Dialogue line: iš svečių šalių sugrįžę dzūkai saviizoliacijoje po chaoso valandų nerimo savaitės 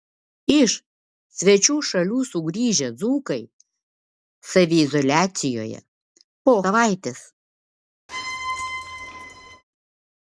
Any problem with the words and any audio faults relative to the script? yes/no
yes